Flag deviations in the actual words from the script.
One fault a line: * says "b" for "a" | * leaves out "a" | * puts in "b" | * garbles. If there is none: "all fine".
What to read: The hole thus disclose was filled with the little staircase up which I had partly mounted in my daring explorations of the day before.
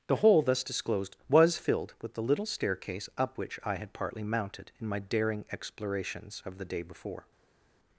* says "disclosed" for "disclose"